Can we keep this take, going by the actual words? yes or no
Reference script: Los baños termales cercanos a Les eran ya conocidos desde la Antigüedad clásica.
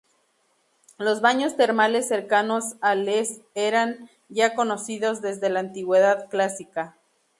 yes